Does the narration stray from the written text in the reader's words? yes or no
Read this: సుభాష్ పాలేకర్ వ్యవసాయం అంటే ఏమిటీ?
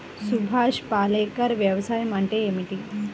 no